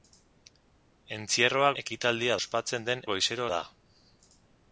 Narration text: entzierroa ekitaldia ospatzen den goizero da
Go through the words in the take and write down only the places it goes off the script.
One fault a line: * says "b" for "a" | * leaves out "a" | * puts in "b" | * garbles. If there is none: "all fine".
all fine